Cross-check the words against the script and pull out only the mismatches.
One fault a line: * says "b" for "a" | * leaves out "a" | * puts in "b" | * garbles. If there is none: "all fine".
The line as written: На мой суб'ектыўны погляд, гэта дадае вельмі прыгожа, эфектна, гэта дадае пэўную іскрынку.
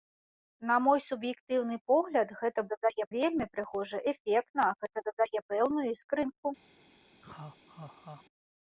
all fine